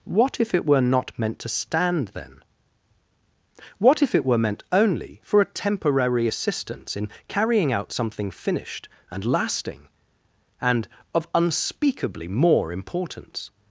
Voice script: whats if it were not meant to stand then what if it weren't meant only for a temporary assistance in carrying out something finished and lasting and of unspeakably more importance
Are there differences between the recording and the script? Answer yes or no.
yes